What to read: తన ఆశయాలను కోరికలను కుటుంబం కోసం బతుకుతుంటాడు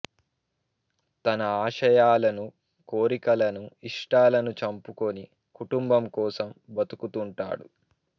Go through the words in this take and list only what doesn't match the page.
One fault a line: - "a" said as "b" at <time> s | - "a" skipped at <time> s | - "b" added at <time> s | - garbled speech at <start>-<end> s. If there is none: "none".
- "ఇష్టాలను చంపుకొని" added at 3.8 s